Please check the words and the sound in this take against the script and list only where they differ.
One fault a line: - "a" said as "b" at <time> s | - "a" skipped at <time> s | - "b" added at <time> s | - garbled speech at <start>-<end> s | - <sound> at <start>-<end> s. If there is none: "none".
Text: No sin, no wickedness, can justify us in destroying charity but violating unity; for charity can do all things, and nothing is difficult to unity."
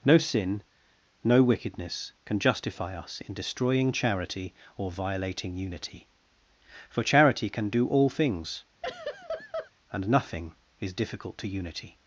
- "but" said as "or" at 4.8 s
- laugh at 8.8-9.7 s